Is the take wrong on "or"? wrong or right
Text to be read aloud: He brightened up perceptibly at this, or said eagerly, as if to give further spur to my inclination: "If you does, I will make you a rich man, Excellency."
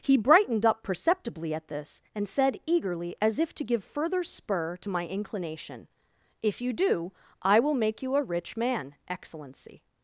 wrong